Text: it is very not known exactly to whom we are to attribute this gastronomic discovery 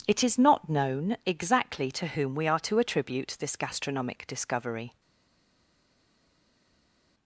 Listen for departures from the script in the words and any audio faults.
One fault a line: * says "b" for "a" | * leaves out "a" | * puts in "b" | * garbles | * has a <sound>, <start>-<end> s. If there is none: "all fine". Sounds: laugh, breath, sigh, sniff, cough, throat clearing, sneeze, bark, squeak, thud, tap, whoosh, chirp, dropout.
* leaves out "very"